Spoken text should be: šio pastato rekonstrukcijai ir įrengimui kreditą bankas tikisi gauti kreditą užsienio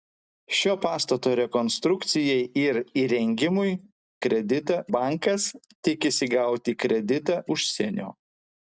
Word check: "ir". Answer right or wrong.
right